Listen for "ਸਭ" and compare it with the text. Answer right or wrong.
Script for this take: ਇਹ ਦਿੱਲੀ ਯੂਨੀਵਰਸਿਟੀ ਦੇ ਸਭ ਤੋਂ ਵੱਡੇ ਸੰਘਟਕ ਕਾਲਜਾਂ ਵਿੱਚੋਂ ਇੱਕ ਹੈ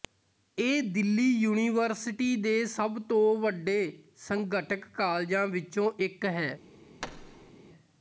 right